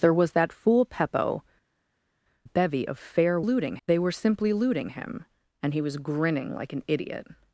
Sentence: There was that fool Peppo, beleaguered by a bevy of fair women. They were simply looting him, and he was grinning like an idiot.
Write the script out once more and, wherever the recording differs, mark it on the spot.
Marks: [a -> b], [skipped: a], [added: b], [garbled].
There was that fool Peppo, [skipped: beleaguered by a] bevy of fair [women. -> looting] They were simply looting him, and he was grinning like an idiot.